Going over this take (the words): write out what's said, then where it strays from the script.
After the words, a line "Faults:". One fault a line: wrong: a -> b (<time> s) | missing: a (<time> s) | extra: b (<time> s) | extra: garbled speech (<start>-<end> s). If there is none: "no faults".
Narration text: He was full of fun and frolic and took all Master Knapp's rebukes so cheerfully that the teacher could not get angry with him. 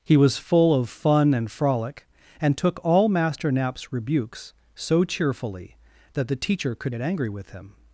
He was full of fun and frolic and took all Master Knapp's rebukes so cheerfully that the teacher could get angry with him.
Faults:
missing: not (7.0 s)